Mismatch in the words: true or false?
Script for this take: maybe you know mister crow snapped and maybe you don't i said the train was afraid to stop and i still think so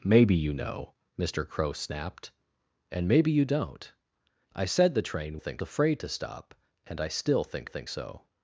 true